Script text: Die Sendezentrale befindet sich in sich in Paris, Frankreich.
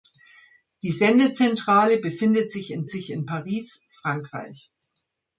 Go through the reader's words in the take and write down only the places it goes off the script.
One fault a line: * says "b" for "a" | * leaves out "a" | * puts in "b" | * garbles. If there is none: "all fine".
all fine